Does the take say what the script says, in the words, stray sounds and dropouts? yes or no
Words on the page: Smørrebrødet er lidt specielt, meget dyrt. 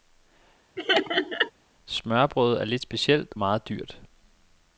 no